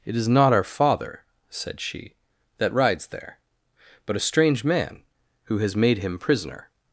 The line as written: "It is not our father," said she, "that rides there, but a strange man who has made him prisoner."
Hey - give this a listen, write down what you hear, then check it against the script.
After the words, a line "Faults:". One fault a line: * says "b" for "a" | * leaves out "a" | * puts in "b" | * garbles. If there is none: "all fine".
"It is not our father," said she, "that rides there, but a strange man who has made him prisoner."
Faults:
all fine